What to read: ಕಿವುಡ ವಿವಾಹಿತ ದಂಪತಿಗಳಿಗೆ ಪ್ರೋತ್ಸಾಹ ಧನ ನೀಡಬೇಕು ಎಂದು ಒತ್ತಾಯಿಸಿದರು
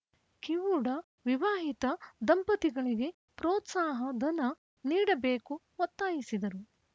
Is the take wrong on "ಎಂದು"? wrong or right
wrong